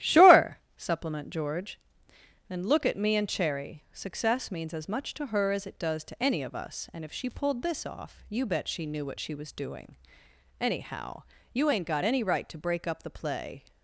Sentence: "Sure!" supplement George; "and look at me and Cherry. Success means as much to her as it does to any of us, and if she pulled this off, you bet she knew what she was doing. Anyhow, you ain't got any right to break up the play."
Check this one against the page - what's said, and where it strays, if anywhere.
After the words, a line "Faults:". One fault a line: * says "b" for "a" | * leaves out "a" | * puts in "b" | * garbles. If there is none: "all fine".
"Sure!" supplement George; "and look at me and Cherry. Success means as much to her as it does to any of us, and if she pulled this off, you bet she knew what she was doing. Anyhow, you ain't got any right to break up the play."
Faults:
all fine